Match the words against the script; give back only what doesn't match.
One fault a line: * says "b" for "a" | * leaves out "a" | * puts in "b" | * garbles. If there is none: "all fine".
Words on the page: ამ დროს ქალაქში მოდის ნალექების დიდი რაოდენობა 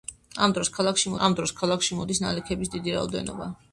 * puts in "ამ დროს ქალაქში"